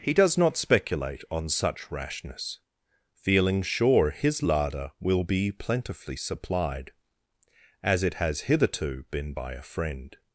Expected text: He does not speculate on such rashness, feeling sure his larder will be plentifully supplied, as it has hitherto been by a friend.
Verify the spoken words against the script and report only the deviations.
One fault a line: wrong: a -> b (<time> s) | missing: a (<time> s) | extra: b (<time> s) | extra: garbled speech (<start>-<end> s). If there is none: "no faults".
no faults